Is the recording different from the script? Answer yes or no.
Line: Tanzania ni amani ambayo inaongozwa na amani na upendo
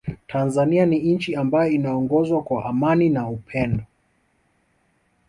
yes